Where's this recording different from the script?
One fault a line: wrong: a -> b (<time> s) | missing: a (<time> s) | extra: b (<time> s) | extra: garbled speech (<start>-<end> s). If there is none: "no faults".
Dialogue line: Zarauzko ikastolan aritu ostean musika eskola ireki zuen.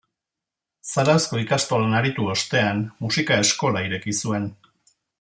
no faults